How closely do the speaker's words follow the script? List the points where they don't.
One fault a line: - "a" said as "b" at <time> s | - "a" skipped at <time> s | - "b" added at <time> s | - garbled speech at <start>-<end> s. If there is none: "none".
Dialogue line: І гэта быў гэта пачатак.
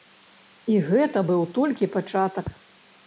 - "гэта" said as "толькі" at 1.6 s